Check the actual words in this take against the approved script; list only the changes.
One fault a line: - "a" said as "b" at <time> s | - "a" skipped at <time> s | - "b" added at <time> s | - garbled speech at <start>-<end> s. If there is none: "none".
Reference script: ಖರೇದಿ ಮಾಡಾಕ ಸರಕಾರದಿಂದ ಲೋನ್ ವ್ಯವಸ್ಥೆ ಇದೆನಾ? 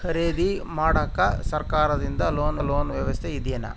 - "ಲೋನ್" added at 2.6 s